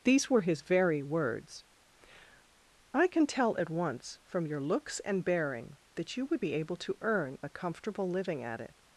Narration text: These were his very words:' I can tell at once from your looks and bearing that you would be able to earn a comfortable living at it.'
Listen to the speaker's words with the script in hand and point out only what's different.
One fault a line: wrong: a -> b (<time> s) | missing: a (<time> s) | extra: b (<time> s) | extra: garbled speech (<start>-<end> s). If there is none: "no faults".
no faults